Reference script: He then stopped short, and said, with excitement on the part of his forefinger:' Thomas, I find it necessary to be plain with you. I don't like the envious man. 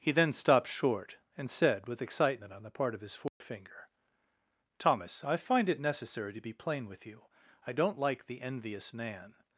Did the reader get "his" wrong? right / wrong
right